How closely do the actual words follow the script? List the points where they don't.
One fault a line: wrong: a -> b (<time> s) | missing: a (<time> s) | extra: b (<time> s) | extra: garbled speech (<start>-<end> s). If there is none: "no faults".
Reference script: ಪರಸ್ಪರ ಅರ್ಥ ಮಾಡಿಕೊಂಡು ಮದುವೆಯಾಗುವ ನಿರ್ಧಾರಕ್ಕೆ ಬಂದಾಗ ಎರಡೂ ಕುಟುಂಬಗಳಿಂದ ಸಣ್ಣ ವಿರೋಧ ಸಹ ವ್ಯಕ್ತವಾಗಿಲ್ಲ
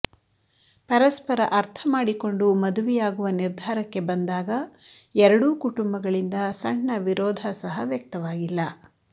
no faults